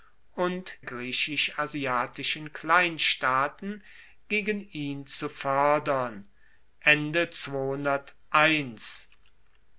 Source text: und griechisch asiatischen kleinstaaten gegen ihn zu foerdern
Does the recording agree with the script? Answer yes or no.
yes